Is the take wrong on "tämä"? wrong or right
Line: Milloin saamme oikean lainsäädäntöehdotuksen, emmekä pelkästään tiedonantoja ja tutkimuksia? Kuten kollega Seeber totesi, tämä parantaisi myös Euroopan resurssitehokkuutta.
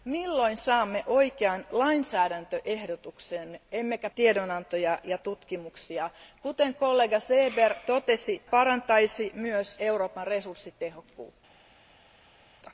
wrong